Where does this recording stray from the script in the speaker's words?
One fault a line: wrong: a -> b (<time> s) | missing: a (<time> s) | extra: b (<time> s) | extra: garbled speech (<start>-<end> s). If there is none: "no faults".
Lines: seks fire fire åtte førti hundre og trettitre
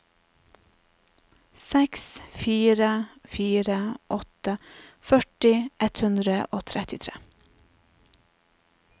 extra: ett (5.9 s)